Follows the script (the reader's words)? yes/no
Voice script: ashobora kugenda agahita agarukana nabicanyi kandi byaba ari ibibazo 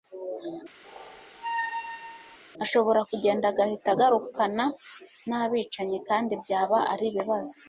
yes